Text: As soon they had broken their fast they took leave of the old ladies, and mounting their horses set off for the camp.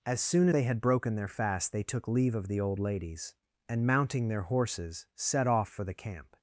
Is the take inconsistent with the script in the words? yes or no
no